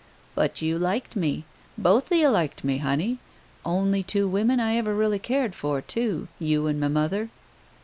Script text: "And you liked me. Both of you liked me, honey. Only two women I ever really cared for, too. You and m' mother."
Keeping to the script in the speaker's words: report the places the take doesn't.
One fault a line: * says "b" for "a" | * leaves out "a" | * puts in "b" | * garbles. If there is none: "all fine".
* says "But" for "And"